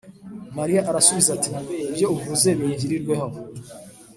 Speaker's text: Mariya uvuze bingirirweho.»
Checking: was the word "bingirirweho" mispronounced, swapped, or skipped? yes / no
no